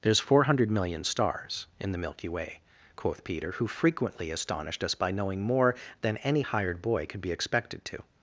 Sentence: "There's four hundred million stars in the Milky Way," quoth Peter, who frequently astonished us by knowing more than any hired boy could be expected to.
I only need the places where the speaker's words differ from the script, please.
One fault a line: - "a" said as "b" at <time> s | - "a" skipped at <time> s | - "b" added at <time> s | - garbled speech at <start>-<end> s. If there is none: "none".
none